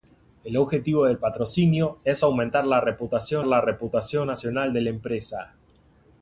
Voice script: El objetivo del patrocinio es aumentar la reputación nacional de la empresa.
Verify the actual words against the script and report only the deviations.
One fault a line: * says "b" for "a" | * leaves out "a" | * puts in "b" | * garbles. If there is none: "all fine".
* puts in "la reputación"